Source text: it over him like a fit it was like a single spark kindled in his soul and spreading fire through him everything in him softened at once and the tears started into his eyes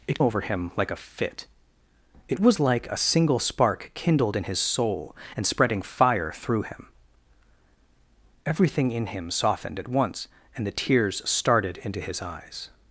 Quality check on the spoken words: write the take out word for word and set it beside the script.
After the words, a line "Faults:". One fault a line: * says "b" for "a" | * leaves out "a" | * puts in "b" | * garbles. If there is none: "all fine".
it over him like a fit it was like a single spark kindled in his soul and spreading fire through him everything in him softened at once and the tears started into his eyes
Faults:
all fine